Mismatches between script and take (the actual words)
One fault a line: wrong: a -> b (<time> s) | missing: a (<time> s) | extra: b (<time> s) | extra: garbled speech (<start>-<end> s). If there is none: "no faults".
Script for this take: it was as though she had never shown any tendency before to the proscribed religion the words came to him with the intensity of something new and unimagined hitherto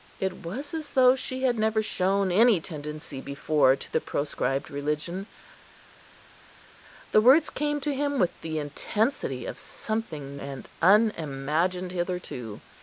missing: new (10.4 s)